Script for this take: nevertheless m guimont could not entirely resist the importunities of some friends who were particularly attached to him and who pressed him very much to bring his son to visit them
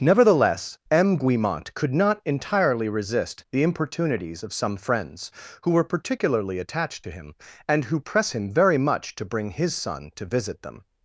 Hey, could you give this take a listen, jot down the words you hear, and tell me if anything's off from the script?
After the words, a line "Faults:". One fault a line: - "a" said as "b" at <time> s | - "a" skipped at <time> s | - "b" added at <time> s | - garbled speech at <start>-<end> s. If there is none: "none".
nevertheless m guimont could not entirely resist the importunities of some friends who were particularly attached to him and who press him very much to bring his son to visit them
Faults:
- "pressed" said as "press" at 8.0 s